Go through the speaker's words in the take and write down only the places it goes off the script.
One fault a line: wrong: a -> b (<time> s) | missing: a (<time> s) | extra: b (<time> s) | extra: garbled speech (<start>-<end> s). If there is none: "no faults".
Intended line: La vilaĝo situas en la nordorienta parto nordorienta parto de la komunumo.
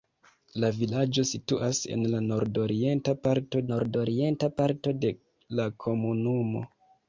no faults